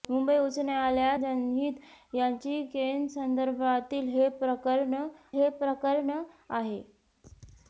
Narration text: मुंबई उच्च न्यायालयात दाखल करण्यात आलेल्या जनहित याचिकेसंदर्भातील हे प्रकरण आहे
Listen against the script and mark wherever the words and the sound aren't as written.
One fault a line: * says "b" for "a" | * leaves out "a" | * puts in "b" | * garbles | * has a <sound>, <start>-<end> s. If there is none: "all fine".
* says "जनहित याचिकेसंदर्भातील हे प्रकरण" for "दाखल करण्यात आलेल्या जनहित याचिकेसंदर्भातील"